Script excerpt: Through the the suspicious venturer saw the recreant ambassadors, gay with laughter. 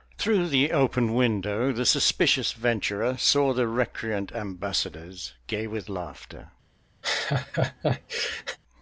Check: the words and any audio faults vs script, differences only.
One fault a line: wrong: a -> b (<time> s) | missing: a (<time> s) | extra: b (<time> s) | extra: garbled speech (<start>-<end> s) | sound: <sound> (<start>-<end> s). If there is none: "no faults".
extra: open window (0.7 s)
sound: laugh (7.0-8.6 s)